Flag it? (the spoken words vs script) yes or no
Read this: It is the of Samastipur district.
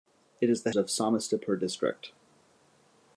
no